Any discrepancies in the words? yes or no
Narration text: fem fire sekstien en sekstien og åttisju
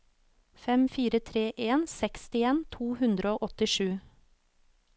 yes